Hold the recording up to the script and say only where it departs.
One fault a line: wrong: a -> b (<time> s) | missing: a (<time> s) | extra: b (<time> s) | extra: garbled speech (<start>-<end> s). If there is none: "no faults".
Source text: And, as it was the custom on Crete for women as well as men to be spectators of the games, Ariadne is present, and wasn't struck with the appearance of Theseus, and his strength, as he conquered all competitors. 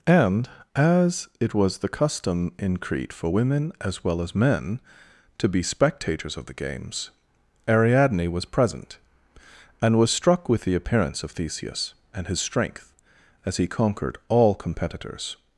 wrong: on -> in (2.6 s)
wrong: is -> was (8.3 s)
wrong: wasn't -> was (10.0 s)